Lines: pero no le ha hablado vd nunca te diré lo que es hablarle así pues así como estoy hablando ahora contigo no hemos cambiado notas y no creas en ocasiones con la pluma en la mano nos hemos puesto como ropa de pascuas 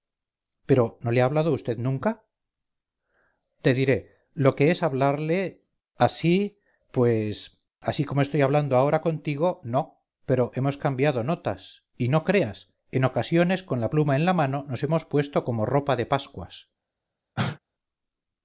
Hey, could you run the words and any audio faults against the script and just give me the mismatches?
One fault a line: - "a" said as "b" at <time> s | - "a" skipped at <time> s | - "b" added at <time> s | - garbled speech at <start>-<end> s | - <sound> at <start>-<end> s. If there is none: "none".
- "pero" added at 10.3 s
- cough at 17.4-17.6 s